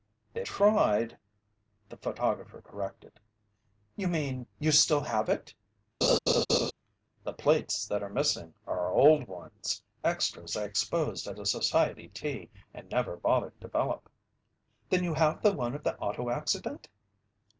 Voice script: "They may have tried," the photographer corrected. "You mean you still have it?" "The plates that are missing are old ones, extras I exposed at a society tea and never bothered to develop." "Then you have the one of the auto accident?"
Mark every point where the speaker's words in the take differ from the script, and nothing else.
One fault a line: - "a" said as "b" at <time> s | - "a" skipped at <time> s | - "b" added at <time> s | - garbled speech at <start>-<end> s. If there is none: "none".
- "may have" skipped at 0.5 s
- "to" skipped at 13.6 s